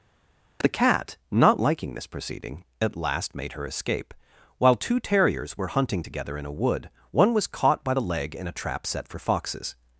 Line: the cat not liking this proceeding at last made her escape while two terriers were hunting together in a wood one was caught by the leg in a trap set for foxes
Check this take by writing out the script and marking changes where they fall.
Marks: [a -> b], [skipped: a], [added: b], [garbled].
the cat not liking this proceeding at last made her escape while two terriers were hunting together in a wood one was caught by the leg in a trap set for foxes